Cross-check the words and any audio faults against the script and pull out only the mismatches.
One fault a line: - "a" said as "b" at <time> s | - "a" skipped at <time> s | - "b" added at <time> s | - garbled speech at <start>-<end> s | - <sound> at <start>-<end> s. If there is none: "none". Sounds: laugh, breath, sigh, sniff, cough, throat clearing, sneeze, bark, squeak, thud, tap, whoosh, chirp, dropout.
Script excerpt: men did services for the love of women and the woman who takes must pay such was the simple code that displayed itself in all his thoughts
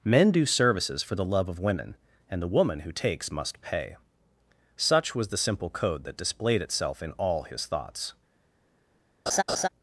- "did" said as "do" at 0.3 s
- laugh at 9.3-9.7 s